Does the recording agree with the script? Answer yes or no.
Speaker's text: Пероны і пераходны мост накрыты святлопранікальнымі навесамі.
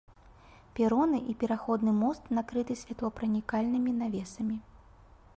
yes